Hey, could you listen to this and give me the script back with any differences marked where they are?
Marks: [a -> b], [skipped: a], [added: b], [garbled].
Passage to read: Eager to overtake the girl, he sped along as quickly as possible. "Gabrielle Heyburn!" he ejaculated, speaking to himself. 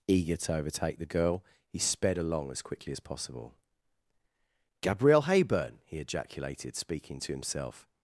Eager to overtake the girl, he sped along as quickly as possible. "Gabrielle Heyburn!" he ejaculated, speaking to himself.